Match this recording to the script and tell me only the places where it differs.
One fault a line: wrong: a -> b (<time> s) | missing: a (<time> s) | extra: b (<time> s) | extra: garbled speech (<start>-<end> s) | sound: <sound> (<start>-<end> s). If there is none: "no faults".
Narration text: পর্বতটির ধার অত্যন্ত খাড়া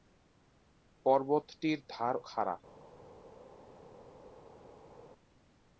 missing: অত্যন্ত (2.1 s)